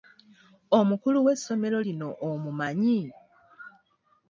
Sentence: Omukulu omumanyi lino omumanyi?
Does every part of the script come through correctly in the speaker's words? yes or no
no